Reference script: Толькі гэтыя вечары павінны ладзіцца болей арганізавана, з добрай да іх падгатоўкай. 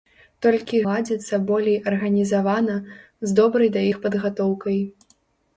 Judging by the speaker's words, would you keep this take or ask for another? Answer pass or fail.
fail